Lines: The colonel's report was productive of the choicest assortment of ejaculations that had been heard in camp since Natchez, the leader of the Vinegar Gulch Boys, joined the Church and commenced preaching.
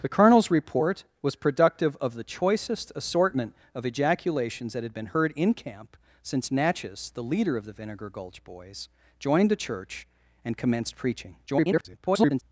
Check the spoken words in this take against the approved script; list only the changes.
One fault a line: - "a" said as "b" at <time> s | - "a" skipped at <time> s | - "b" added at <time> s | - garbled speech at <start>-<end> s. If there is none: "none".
- garbled speech at 11.5-12.4 s